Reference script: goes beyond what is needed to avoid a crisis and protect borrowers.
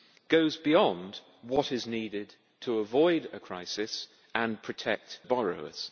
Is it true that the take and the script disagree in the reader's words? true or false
false